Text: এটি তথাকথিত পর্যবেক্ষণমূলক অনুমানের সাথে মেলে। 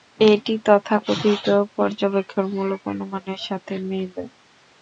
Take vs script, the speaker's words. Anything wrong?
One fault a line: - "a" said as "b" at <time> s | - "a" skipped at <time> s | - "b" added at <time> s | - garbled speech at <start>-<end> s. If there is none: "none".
none